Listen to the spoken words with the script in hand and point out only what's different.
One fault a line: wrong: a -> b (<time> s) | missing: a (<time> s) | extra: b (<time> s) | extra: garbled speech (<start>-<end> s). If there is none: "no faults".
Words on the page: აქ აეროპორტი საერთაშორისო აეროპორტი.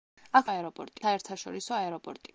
no faults